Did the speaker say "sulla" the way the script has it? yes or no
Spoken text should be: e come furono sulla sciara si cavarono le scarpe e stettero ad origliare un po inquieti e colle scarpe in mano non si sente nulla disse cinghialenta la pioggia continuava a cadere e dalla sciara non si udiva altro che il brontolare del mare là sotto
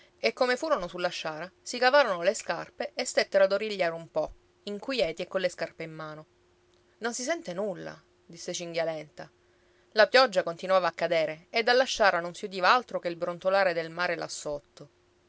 yes